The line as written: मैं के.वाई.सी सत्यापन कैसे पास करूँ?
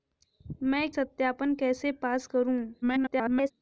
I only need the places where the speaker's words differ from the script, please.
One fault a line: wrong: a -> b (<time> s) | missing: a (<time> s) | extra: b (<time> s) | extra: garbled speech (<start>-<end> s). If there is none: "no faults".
missing: के.वाई.सी (0.9 s)
extra: garbled speech (2.8-3.5 s)